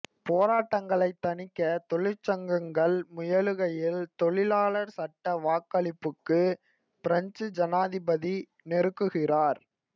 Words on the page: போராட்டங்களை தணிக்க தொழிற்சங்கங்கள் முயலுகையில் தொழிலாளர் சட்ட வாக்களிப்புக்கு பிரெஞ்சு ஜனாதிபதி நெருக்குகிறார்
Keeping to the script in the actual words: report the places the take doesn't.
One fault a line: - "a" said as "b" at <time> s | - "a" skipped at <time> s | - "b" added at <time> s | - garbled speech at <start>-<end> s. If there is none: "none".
none